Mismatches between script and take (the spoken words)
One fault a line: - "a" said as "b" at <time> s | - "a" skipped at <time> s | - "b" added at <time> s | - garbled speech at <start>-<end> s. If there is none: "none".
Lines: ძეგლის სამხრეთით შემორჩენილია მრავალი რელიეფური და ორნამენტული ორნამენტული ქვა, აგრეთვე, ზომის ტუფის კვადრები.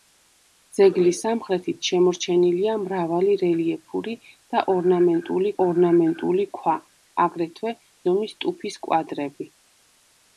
none